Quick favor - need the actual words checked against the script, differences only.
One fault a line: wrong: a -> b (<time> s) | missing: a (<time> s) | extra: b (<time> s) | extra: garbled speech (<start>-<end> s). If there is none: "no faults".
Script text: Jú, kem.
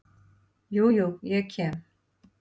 extra: jú ég (0.9 s)